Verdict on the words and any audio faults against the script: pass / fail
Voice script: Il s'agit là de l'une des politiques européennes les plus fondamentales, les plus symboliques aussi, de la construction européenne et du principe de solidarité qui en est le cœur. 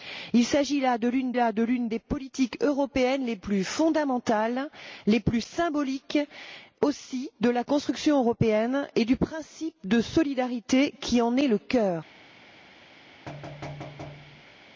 fail